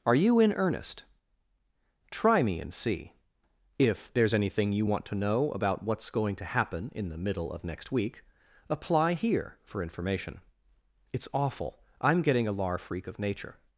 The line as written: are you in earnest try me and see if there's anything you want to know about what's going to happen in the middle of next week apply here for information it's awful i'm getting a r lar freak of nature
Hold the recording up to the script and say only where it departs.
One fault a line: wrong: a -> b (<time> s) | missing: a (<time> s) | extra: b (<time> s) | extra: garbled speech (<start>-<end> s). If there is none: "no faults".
missing: r (12.5 s)